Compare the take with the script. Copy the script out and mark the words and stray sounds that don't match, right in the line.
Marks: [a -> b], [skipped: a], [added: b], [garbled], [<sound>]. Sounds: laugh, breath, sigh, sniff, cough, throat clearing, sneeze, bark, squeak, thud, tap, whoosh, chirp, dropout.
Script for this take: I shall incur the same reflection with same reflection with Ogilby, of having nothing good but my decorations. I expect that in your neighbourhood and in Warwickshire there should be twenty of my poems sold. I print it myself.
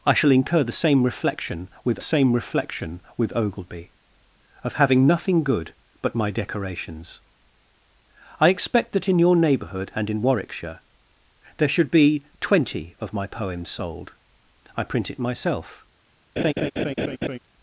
I shall incur the same reflection with same reflection with Ogilby, of having nothing good but my decorations. I expect that in your neighbourhood and in Warwickshire there should be twenty of my poems sold. I print it myself. [laugh]